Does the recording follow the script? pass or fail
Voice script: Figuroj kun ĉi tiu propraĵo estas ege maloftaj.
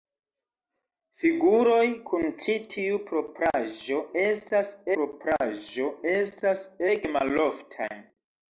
fail